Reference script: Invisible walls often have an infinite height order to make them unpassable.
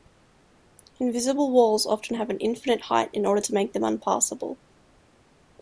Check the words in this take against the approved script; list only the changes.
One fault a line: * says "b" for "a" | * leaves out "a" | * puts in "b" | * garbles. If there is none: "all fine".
* puts in "in"